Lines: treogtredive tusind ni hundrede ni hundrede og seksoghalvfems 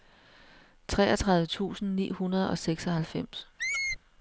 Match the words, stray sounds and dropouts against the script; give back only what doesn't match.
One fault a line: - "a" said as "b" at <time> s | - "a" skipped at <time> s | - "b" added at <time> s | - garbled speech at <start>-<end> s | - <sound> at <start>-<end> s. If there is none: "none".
- "ni hundrede" skipped at 2.5 s
- squeak at 3.6-4.0 s